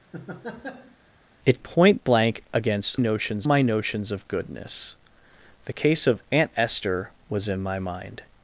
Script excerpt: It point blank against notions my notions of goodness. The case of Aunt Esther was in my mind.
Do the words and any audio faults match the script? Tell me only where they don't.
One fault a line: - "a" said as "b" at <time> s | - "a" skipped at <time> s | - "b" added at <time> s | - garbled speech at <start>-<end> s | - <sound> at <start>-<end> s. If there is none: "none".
- laugh at 0.1-1.0 s